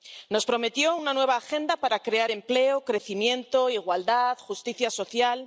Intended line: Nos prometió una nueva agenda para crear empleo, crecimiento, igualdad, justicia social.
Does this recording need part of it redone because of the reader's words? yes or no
no